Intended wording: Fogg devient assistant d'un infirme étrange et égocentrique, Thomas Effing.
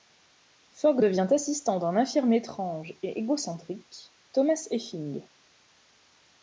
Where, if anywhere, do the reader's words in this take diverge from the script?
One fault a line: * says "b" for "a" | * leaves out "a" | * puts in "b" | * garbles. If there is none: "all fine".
all fine